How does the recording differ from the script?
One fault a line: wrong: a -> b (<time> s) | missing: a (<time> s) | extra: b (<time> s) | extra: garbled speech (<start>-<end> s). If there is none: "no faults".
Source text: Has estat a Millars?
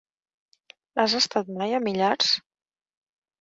extra: mai (1.6 s)